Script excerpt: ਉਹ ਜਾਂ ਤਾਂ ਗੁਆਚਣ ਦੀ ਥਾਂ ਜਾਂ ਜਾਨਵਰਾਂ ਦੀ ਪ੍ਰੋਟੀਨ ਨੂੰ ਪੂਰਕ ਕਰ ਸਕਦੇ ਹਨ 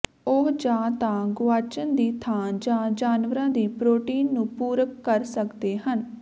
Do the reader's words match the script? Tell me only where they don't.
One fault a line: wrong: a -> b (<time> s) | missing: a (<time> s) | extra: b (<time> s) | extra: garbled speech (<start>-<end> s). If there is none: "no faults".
no faults